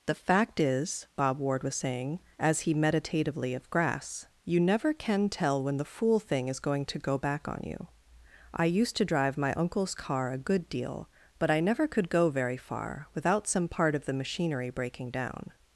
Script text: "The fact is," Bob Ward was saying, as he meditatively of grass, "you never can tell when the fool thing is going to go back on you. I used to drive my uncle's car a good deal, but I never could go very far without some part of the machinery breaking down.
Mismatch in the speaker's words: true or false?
false